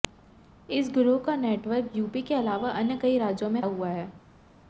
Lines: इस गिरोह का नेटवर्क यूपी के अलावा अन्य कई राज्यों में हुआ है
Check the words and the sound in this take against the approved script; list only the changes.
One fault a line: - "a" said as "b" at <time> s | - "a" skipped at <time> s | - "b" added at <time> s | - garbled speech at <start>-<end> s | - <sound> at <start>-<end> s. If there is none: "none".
none